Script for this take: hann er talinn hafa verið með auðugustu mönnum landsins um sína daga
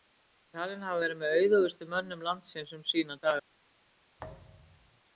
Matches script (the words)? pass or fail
pass